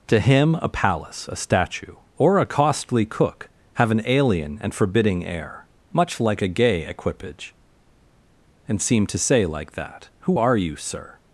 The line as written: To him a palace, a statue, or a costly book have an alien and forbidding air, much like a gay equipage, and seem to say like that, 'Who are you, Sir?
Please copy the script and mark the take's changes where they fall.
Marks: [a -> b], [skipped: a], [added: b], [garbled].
To him a palace, a statue, or a costly [book -> cook] have an alien and forbidding air, much like a gay equipage, and seem to say like that, 'Who are you, Sir?